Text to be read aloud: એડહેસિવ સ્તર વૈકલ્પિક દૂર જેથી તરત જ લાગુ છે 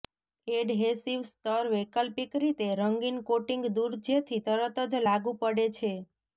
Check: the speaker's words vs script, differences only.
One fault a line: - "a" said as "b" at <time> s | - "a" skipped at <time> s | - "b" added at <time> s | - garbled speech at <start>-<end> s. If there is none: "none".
- "રીતે રંગીન કોટિંગ" added at 2.4 s
- "પડે" added at 5.4 s